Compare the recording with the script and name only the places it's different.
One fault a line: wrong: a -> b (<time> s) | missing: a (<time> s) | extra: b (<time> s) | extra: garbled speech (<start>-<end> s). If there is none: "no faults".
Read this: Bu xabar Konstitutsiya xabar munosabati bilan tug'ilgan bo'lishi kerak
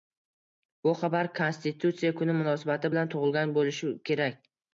wrong: xabar -> kuni (2.2 s)